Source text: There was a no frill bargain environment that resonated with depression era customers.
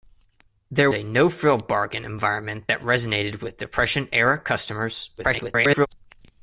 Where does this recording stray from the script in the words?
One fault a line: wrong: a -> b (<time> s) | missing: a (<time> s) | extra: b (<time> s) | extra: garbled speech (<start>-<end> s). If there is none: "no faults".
missing: was (0.9 s)
extra: garbled speech (5.2-5.9 s)